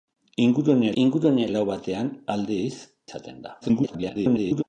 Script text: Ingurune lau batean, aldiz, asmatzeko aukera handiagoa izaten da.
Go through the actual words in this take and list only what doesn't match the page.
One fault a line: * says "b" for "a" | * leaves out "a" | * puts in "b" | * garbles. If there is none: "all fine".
* puts in "ingurune"
* leaves out "asmatzeko aukera handiagoa"
* garbles